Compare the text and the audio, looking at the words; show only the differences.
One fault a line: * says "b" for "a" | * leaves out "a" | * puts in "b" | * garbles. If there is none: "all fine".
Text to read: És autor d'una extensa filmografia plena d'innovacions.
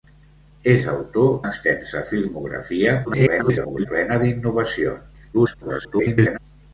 * leaves out "d'una"
* garbles
* garbles